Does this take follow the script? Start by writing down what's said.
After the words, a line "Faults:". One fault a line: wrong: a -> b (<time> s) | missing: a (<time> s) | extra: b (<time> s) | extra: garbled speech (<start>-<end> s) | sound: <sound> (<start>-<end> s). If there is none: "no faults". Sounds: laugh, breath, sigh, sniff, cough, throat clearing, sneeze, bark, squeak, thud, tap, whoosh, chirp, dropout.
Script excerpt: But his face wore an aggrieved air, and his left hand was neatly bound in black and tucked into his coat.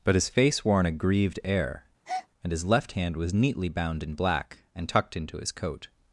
But his face wore an aggrieved air, and his left hand was neatly bound in black and tucked into his coat.
Faults:
sound: breath (2.0-2.3 s)